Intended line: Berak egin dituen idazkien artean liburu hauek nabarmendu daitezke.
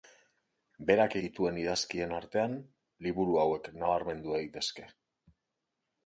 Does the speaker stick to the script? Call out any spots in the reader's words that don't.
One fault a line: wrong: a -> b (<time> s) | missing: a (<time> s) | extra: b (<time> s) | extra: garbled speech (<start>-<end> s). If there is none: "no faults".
missing: egin (1.2 s)